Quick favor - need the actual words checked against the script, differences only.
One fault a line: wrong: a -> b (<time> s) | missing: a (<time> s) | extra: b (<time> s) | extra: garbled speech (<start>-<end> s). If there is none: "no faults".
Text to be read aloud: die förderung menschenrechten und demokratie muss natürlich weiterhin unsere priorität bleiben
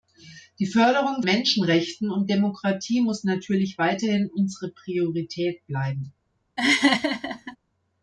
no faults